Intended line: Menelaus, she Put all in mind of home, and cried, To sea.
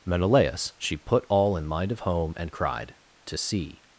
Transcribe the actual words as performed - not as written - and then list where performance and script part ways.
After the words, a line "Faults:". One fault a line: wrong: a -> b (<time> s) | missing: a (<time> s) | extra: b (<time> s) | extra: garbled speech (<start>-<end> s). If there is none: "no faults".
Menelaus, she Put all in mind of home, and cried, To sea.
Faults:
no faults